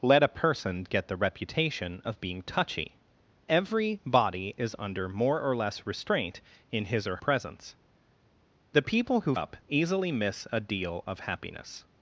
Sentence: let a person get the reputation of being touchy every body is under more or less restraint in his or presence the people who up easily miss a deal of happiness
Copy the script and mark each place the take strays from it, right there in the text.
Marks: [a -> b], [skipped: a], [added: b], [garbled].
let a person get the reputation of being touchy every body is under more or less restraint in his or presence the people who up easily miss a deal of happiness